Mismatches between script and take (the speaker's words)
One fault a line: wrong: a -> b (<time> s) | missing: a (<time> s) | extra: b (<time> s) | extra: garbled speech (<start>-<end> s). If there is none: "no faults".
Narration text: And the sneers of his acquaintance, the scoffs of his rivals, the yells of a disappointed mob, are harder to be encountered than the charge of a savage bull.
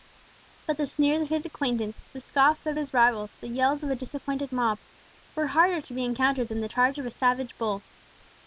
wrong: And -> But (0.7 s)
wrong: are -> were (5.3 s)